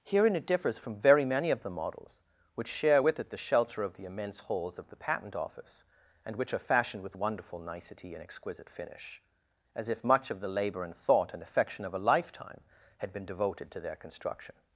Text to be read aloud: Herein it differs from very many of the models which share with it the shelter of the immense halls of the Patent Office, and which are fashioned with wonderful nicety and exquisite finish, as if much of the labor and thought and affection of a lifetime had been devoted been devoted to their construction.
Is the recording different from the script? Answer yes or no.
yes